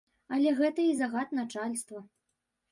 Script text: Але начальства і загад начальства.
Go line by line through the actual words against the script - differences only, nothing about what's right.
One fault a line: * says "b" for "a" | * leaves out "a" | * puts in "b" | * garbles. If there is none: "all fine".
* says "гэта" for "начальства"